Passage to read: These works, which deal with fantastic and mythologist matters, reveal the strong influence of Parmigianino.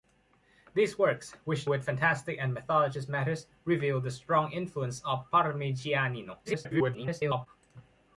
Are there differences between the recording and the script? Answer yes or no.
yes